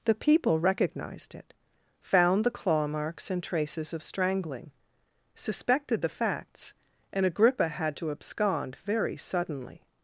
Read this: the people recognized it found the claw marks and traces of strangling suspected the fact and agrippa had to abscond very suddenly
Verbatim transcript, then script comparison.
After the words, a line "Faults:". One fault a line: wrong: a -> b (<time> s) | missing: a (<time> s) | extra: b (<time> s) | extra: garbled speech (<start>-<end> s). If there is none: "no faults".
the people recognized it found the claw marks and traces of strangling suspected the facts and agrippa had to abscond very suddenly
Faults:
wrong: fact -> facts (6.1 s)